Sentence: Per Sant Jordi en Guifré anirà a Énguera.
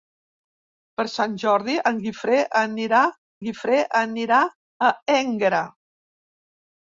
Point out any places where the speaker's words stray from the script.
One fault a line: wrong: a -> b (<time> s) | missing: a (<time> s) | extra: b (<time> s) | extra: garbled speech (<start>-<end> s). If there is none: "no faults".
extra: Guifré anirà (3.5 s)